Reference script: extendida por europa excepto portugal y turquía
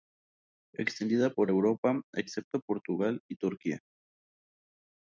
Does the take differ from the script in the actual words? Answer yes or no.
no